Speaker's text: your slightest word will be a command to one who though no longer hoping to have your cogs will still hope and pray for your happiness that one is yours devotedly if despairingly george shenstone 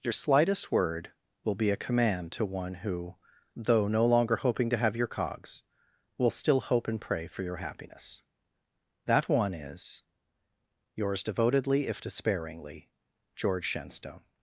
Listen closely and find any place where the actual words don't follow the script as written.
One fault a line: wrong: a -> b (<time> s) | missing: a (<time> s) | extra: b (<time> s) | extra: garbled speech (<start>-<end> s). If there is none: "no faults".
no faults